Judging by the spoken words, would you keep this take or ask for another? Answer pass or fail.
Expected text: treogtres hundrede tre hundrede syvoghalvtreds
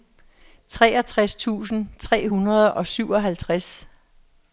fail